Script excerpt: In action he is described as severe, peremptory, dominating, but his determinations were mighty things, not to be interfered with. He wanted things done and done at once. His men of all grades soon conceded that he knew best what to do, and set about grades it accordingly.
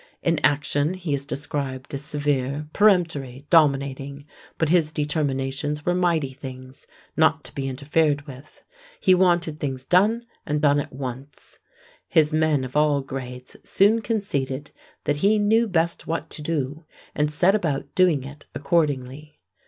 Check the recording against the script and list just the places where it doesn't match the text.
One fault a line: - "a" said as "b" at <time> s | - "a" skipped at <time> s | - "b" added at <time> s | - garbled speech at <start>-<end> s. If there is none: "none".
- "grades" said as "doing" at 17.9 s